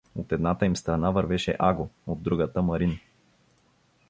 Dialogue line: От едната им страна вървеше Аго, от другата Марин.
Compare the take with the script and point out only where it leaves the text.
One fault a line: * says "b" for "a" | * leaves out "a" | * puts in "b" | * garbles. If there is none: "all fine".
all fine